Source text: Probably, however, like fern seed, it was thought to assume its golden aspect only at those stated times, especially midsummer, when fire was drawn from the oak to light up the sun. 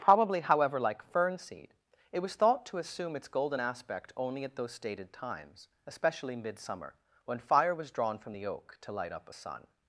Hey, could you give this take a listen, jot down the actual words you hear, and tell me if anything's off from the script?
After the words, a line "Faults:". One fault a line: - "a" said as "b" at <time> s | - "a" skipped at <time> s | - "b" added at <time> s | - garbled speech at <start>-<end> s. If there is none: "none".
Probably, however, like fern seed, it was thought to assume its golden aspect only at those stated times, especially midsummer, when fire was drawn from the oak to light up a sun.
Faults:
- "the" said as "a" at 9.3 s